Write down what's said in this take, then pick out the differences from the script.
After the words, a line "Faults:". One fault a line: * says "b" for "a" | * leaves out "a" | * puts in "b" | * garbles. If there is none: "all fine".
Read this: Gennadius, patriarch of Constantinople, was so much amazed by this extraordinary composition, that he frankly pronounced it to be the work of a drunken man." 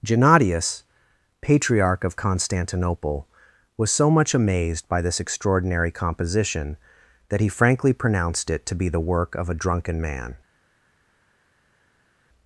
Gennadius, patriarch of Constantinople, was so much amazed by this extraordinary composition, that he frankly pronounced it to be the work of a drunken man."
Faults:
all fine